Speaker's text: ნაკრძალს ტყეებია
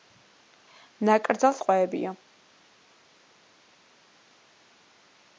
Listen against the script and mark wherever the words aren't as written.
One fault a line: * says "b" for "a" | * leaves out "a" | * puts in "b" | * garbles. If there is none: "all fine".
all fine